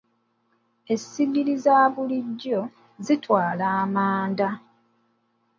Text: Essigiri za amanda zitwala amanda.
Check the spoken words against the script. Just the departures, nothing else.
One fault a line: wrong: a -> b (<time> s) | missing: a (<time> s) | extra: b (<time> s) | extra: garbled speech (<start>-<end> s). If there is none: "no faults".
wrong: amanda -> bulijjo (1.9 s)